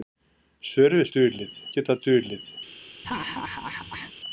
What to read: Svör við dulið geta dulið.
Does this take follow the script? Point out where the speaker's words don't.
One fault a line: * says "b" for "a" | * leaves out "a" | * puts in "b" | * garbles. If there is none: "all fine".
all fine